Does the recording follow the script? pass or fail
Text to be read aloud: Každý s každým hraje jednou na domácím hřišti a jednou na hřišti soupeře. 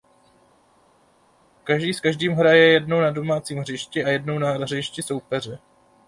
pass